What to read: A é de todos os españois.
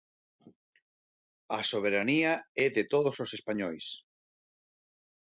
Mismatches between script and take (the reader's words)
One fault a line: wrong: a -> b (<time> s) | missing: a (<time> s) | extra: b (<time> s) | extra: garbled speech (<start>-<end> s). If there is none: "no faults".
extra: soberanía (1.7 s)